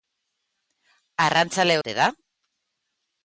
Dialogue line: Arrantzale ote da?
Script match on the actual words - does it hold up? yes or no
yes